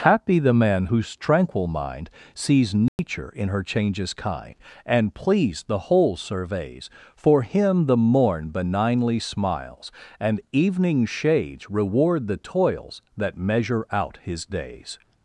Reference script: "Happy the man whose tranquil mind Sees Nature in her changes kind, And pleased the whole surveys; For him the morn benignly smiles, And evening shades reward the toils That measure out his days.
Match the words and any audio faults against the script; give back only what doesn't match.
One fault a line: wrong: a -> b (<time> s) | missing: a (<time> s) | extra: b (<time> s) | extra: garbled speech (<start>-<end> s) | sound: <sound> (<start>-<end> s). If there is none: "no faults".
sound: dropout (2.9-3.0 s)